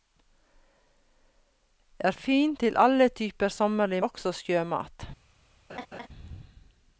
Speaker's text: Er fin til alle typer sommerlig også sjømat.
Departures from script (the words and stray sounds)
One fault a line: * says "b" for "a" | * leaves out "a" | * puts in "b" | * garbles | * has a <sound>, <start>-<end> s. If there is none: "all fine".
* has a laugh, 5.7-6.1 s